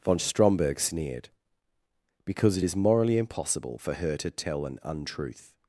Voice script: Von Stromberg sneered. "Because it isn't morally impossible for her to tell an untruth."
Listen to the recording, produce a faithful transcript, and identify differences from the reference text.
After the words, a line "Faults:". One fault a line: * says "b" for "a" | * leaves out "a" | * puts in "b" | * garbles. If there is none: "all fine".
Von Stromberg sneered. "Because it is morally impossible for her to tell an untruth."
Faults:
* says "is" for "isn't"